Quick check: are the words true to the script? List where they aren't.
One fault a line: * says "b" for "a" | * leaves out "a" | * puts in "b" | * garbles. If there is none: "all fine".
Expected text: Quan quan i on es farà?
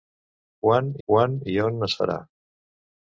all fine